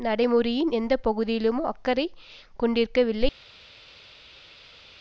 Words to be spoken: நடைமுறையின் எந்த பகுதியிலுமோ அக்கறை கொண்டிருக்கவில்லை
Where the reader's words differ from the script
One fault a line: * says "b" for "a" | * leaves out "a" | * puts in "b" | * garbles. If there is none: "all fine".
all fine